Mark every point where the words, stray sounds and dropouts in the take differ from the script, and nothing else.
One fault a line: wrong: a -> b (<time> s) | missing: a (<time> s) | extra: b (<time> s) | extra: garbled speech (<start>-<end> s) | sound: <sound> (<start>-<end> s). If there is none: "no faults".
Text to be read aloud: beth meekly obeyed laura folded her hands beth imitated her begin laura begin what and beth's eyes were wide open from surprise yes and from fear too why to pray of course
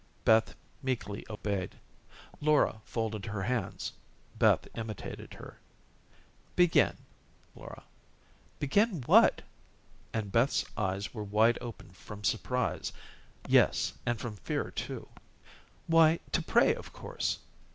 sound: dropout (1.4-1.4 s)